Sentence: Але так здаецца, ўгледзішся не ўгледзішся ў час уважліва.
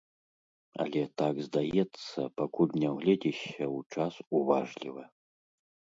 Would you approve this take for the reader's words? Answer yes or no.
no